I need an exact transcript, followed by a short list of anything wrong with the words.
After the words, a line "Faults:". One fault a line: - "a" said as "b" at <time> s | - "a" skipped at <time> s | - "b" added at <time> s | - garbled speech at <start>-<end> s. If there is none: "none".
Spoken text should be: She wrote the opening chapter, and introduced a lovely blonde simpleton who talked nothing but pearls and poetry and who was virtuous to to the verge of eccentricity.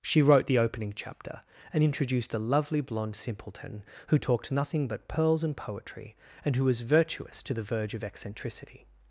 She wrote the opening chapter, and introduced a lovely blonde simpleton who talked nothing but pearls and poetry and who was virtuous to the verge of eccentricity.
Faults:
- "to" skipped at 7.5 s